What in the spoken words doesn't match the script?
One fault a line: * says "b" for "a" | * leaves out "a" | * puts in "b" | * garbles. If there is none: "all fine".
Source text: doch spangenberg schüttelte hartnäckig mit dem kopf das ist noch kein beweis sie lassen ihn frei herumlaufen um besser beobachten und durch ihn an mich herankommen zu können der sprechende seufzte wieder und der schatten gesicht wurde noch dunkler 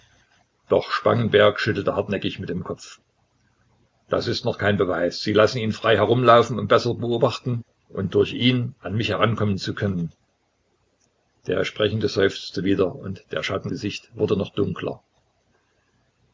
all fine